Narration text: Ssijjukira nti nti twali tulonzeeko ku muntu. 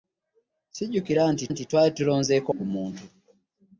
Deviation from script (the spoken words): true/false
false